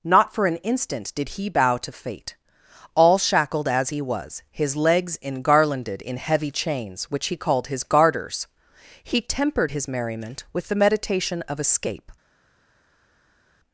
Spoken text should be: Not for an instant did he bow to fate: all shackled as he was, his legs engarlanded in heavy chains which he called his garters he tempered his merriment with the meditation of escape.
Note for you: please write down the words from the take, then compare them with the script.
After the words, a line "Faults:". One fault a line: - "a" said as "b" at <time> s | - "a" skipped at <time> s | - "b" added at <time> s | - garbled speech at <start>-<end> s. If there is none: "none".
Not for an instant did he bow to fate: all shackled as he was, his legs engarlanded in heavy chains which he called his garters he tempered his merriment with the meditation of escape.
Faults:
none